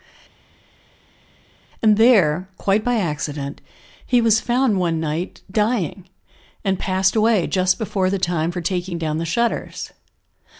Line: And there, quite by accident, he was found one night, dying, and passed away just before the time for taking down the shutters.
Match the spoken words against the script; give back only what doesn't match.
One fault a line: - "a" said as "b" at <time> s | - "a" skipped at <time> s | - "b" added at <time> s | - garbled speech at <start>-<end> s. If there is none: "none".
none